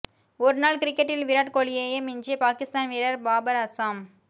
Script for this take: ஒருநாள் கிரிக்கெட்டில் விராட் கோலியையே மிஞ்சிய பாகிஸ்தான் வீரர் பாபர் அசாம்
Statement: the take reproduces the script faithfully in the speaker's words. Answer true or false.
true